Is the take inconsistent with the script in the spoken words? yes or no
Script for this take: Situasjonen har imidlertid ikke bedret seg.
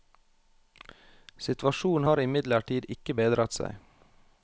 no